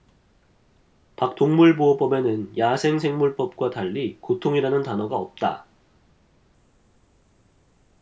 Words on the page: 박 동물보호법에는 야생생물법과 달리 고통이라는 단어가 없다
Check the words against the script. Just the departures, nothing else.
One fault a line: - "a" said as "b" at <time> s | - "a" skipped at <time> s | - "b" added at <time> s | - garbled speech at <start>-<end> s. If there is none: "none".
none